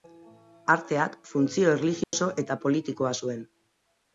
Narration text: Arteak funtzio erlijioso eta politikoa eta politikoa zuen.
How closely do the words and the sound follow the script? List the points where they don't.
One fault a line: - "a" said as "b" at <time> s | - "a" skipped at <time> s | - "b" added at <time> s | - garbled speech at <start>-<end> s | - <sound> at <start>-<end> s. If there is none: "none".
- dropout at 2.0-2.1 s
- "eta politikoa" skipped at 3.2 s